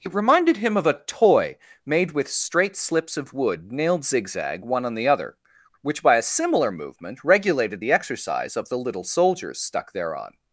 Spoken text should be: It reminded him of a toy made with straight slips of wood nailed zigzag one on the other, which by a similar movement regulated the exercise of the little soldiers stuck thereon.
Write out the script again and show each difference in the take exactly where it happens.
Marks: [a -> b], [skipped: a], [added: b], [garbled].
It reminded him of a toy made with straight slips of wood nailed zigzag one on the other, which by a similar movement regulated the exercise of the little soldiers stuck thereon.